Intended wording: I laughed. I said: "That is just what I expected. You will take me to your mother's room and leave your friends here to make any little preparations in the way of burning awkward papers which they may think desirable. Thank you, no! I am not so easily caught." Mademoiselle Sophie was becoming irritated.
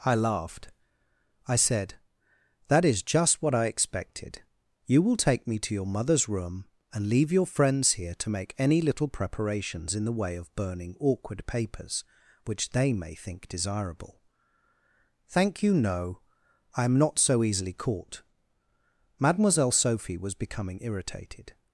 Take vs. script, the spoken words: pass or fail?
pass